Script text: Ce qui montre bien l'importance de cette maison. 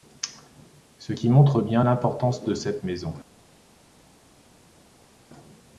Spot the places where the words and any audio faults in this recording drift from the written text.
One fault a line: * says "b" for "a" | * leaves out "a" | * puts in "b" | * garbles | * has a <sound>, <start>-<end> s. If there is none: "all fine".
all fine